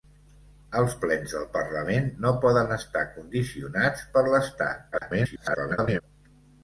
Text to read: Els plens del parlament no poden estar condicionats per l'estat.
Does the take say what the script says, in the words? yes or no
no